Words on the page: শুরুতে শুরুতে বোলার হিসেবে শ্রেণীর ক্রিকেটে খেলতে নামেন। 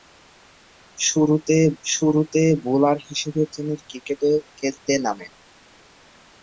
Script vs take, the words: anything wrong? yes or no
no